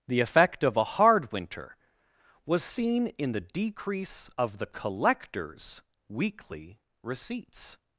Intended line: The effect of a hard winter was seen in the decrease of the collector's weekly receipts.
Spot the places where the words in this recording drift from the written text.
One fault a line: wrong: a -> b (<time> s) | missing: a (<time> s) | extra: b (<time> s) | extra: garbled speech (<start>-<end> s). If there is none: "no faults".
no faults